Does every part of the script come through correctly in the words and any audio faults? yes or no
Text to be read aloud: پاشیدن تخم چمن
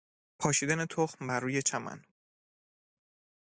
no